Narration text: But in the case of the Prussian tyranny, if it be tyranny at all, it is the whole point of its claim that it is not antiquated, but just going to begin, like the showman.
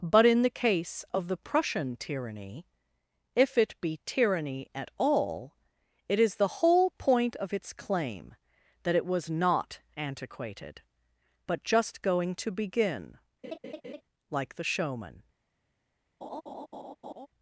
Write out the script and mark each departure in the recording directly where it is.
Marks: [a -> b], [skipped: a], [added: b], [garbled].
But in the case of the Prussian tyranny, if it be tyranny at all, it is the whole point of its claim that it [is -> was] not antiquated, but just going to begin, like the showman.